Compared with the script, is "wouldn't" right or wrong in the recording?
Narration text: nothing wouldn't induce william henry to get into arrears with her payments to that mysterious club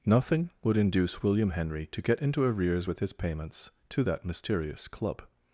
wrong